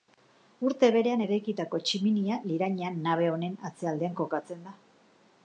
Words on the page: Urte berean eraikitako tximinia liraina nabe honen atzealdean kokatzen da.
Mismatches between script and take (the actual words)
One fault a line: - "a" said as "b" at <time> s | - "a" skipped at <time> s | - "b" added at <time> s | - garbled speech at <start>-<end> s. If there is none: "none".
none